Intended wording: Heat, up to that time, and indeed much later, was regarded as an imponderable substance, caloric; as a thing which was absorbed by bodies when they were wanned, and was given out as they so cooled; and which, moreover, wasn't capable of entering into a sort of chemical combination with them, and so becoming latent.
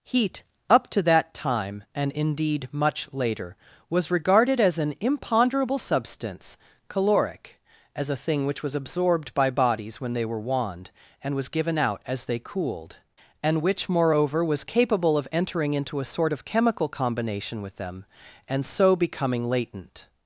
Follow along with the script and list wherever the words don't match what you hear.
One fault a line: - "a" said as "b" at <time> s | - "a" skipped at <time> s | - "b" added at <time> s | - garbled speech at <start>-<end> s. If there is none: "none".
- "so" skipped at 12.4 s
- "wasn't" said as "was" at 14.4 s